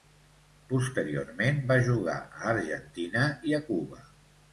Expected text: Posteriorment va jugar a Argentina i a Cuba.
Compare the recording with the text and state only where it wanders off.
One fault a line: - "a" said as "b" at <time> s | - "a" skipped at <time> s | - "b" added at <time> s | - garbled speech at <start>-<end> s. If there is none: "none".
none